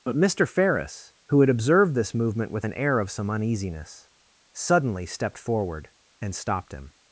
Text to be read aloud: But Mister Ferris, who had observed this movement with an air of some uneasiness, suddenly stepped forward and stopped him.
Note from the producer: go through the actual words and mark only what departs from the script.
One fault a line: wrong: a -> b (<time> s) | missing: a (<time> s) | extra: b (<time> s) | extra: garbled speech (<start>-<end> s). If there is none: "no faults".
no faults